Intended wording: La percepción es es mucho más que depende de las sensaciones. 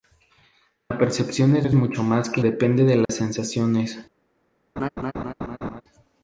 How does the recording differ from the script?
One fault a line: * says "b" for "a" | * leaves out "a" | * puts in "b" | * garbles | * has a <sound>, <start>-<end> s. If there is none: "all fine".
* has a dropout, 3.1-3.1 s
* has a laugh, 4.8-5.8 s